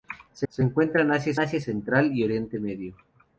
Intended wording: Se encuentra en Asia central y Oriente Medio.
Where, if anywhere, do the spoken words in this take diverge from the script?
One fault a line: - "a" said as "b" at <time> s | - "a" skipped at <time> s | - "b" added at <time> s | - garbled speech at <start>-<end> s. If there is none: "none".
- "se" added at 0.5 s
- "Asia" added at 1.4 s